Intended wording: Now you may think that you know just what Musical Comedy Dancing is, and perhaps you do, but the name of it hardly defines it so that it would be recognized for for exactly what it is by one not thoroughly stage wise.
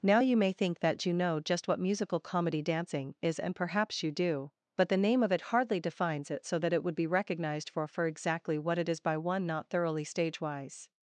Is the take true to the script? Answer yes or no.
yes